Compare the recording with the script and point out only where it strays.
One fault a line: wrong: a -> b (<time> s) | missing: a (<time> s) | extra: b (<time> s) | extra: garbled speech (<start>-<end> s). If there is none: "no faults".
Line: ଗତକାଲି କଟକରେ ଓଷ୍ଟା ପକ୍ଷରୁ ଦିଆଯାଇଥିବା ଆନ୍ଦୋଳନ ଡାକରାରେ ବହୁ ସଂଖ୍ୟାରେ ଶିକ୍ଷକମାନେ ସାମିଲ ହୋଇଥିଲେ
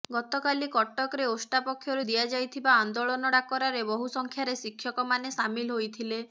no faults